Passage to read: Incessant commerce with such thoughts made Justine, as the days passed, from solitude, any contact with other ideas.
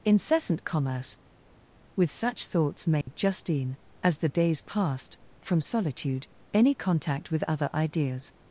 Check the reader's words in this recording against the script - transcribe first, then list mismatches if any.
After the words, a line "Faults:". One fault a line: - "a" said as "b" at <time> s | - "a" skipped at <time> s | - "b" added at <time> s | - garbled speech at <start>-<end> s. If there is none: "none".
Incessant commerce with such thoughts made Justine, as the days passed, from solitude, any contact with other ideas.
Faults:
none